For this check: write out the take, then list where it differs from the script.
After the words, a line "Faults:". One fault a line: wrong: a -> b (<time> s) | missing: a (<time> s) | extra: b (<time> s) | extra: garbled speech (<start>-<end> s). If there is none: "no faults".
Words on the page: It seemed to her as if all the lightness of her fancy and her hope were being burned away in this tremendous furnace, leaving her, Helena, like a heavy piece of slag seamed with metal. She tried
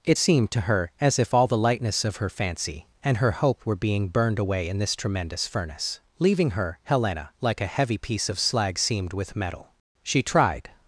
It seemed to her as if all the lightness of her fancy and her hope were being burned away in this tremendous furnace, leaving her, Helena, like a heavy piece of slag seamed with metal. She tried
Faults:
no faults